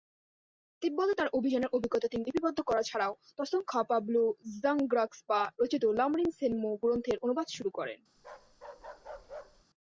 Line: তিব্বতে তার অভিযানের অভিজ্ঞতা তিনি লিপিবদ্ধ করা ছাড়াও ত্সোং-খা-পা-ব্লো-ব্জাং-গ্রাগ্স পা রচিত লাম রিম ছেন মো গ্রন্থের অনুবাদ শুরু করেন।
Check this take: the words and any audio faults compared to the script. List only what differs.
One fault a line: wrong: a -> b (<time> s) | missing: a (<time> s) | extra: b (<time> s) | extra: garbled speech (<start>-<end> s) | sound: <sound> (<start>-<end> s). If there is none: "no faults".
sound: bark (8.2-9.7 s)